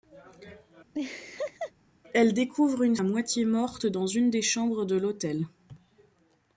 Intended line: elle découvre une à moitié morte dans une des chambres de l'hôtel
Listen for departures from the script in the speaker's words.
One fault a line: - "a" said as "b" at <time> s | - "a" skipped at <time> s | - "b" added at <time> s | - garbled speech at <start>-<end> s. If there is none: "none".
none